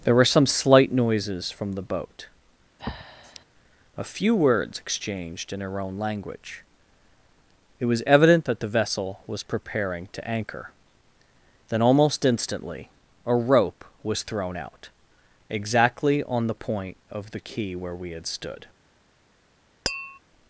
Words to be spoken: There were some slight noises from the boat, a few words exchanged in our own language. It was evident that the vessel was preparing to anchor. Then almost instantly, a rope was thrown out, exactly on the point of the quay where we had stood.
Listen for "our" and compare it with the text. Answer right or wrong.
wrong